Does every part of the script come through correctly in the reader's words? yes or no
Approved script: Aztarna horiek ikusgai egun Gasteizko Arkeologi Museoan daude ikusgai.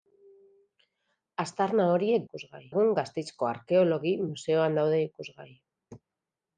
yes